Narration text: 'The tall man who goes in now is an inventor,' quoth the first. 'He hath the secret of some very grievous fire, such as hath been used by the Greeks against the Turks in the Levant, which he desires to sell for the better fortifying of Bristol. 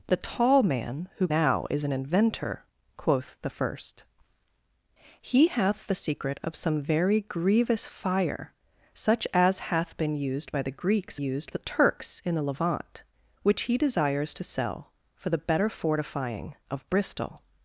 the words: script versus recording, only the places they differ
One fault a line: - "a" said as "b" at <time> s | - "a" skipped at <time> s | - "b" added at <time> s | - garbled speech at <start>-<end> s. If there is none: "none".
- "goes in" skipped at 1.3 s
- "against" said as "used" at 11.1 s